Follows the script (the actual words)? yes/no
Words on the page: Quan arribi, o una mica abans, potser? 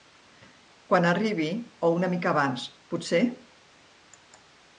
yes